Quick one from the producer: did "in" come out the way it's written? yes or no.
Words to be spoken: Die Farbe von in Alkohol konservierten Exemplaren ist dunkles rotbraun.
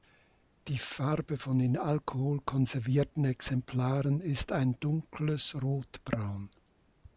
yes